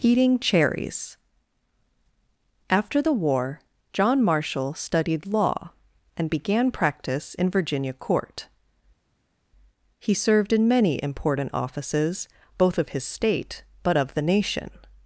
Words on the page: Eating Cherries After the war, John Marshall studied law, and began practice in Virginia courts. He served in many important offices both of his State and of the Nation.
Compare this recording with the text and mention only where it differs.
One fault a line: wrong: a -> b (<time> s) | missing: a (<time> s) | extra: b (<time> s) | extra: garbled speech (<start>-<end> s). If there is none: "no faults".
wrong: courts -> court (7.9 s)
wrong: and -> but (13.8 s)